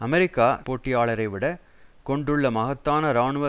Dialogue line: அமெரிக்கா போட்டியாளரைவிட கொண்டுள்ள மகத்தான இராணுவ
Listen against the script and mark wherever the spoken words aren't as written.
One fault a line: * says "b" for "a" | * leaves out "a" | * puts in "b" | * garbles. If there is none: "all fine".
all fine